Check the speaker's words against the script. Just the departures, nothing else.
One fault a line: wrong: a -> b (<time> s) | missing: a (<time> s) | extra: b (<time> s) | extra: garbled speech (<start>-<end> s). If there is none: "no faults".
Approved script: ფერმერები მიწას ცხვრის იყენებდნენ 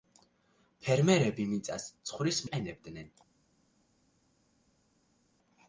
no faults